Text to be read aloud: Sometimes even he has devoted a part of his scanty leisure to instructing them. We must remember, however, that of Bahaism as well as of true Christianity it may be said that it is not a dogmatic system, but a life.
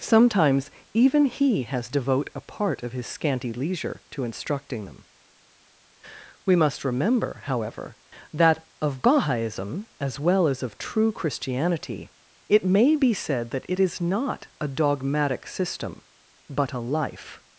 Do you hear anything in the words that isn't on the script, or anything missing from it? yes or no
yes